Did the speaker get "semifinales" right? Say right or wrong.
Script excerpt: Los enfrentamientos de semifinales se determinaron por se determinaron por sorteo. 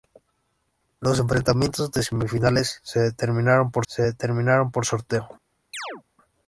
right